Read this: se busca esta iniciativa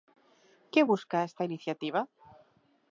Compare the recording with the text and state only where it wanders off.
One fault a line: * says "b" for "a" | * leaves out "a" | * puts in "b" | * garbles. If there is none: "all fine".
* says "que" for "se"